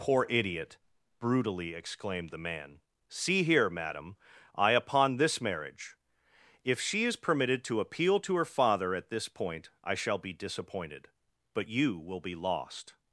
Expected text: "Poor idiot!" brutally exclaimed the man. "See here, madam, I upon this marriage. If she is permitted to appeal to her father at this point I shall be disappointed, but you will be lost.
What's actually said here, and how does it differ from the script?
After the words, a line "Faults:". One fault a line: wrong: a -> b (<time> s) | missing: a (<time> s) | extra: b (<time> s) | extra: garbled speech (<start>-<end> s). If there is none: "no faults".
"Poor idiot!" brutally exclaimed the man. "See here, madam, I upon this marriage. If she is permitted to appeal to her father at this point I shall be disappointed, but you will be lost.
Faults:
no faults